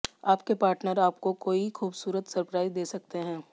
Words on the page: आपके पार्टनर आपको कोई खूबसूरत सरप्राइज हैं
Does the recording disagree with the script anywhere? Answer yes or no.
yes